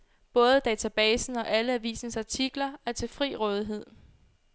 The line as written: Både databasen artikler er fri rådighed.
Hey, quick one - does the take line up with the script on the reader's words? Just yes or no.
no